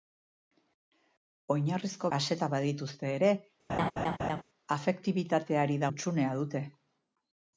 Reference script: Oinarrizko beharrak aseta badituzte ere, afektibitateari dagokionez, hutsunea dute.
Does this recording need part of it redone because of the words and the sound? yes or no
yes